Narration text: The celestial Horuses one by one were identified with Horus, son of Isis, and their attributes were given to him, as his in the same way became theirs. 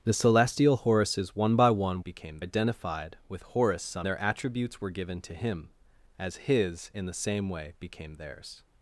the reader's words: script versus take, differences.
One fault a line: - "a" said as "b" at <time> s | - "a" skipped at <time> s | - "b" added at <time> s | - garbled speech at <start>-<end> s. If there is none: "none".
- "were" said as "became" at 2.0 s
- "of Isis and" skipped at 4.1 s